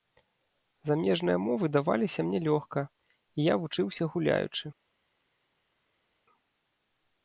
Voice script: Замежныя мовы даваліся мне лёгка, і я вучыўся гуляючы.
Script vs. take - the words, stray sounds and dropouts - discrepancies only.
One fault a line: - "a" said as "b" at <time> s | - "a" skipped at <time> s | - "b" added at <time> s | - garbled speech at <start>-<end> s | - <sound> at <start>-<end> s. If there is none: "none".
none